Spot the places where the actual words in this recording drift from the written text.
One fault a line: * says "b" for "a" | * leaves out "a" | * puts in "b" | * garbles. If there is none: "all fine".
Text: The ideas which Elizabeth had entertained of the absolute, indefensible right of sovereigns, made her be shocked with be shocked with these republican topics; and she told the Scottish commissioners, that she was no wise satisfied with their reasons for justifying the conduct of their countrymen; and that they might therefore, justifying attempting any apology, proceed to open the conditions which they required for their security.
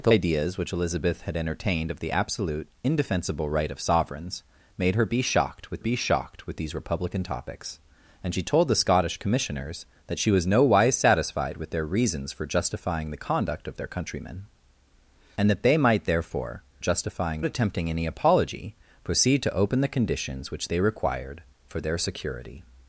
all fine